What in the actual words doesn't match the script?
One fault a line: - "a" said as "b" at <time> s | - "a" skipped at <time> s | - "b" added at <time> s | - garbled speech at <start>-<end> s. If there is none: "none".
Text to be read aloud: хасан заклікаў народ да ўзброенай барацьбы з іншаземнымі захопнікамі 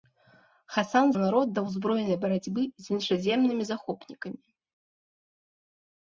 - "заклікаў" skipped at 1.1 s